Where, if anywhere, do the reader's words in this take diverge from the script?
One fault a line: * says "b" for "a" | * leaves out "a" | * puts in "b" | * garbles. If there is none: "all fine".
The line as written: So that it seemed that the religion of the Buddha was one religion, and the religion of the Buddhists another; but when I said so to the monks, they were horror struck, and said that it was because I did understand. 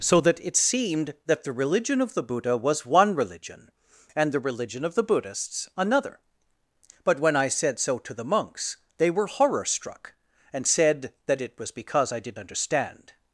all fine